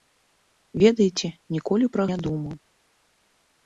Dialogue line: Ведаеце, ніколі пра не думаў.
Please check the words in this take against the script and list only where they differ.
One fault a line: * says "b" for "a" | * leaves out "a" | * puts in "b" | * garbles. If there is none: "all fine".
all fine